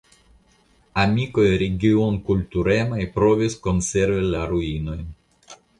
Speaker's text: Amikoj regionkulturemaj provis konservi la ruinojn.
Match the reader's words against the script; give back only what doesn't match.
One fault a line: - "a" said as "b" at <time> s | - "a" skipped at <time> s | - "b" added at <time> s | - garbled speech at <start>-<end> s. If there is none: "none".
none